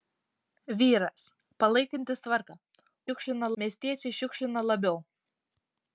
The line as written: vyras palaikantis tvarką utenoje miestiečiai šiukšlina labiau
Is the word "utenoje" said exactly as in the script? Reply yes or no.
no